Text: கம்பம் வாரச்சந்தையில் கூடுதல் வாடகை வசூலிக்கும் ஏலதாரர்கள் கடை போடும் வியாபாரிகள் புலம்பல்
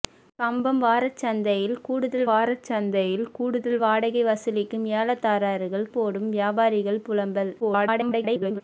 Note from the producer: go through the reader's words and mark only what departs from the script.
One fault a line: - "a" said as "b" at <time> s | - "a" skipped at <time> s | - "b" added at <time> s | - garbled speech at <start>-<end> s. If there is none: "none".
- "வாரச்சந்தையில் கூடுதல்" added at 2.3 s
- "கடை" skipped at 5.9 s
- garbled speech at 7.6-8.6 s